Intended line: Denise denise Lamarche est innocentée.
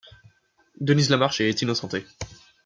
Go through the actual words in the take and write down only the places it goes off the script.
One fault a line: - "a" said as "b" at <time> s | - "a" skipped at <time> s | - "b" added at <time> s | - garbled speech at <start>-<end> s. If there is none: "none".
- "denise" skipped at 1.1 s